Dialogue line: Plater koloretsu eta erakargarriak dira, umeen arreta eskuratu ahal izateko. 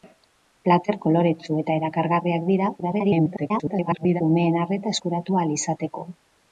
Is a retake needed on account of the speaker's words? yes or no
yes